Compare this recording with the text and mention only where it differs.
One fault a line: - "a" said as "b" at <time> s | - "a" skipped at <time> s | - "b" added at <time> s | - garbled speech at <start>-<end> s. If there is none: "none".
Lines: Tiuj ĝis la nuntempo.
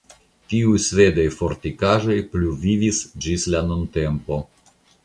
- "svedaj fortikaĵoj pluvivis" added at 0.8 s